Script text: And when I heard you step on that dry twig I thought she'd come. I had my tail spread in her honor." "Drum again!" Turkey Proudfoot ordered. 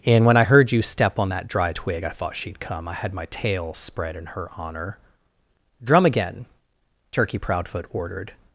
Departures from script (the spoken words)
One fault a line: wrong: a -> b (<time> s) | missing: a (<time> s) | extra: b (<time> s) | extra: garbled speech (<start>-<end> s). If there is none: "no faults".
no faults